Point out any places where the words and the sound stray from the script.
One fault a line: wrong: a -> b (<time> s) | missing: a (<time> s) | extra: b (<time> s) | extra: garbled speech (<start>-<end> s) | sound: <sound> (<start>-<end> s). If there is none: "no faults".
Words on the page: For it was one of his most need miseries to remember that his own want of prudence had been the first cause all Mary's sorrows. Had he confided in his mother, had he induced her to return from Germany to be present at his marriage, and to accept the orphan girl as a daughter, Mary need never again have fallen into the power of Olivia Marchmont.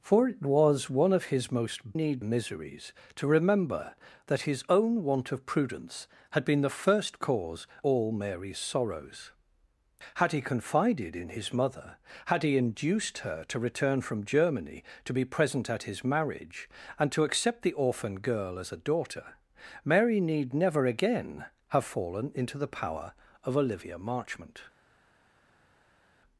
no faults